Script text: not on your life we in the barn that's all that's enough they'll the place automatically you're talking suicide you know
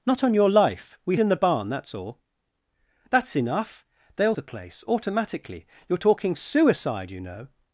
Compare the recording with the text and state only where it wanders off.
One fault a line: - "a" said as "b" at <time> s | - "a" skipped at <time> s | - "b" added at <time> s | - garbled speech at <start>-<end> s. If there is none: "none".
none